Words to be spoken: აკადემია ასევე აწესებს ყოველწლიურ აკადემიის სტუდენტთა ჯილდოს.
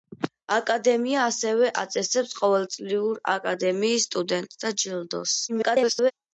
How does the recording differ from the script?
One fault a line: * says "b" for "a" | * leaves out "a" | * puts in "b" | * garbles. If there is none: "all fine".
* garbles